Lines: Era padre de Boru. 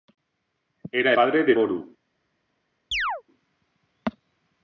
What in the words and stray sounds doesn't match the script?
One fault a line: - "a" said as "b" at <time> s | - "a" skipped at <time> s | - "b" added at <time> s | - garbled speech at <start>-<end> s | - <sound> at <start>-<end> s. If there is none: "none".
- chirp at 2.9-3.2 s